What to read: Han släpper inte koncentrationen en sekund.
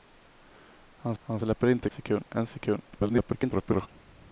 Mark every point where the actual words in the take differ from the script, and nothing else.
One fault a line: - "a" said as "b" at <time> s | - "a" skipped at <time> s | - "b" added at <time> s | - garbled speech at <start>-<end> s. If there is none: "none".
- "han" added at 1.2 s
- "koncentrationen" said as "sekund" at 1.9 s
- garbled speech at 2.9-3.9 s